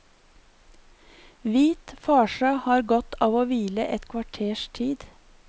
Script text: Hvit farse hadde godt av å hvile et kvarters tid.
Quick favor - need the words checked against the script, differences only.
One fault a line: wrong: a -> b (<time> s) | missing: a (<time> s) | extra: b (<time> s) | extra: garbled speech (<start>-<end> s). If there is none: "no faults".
wrong: hadde -> har (2.6 s)